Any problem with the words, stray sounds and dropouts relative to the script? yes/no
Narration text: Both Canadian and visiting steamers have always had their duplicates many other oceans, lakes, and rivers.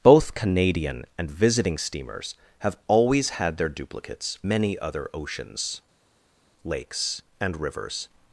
no